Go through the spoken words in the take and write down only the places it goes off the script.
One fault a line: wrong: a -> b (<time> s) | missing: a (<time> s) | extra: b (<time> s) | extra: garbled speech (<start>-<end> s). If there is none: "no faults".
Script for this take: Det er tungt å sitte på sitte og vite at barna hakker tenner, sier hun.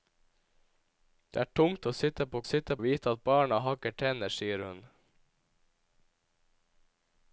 no faults